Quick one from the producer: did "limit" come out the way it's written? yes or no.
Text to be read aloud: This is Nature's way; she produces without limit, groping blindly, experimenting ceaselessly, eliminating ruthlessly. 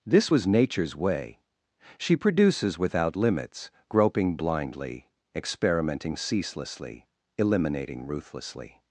no